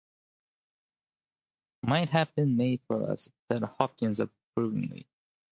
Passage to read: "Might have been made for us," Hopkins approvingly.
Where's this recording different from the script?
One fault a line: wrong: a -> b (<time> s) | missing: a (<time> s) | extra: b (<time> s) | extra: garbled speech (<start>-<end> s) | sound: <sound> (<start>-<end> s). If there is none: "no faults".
extra: said (3.5 s)